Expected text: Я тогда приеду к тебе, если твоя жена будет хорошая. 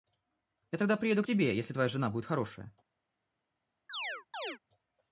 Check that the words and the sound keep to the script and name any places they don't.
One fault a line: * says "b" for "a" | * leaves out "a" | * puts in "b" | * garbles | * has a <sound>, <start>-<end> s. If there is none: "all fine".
* has a chirp, 3.9-4.6 s